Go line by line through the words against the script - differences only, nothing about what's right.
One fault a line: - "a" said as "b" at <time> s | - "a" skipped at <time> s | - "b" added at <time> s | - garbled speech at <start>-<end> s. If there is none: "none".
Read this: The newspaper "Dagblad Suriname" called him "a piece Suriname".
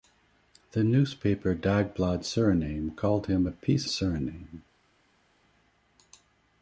none